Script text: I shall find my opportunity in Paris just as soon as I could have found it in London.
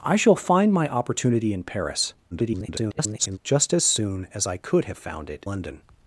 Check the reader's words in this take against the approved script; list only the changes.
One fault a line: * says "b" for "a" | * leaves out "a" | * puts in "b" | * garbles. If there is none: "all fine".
* garbles
* leaves out "in"